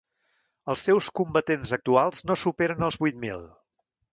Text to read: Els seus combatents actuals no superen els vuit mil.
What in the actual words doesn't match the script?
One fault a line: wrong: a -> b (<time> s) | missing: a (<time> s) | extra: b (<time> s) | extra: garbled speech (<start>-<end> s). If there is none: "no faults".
no faults